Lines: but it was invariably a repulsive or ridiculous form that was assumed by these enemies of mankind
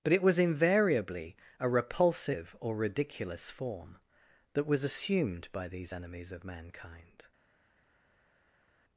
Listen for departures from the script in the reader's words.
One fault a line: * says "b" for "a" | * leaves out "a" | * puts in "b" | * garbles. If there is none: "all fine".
all fine